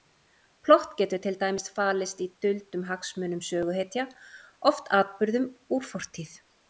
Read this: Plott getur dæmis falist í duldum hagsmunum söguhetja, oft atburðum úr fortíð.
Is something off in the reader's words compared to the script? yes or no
yes